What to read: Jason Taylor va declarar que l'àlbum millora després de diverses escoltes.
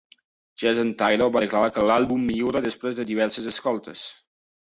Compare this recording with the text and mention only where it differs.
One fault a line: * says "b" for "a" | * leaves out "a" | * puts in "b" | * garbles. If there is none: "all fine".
all fine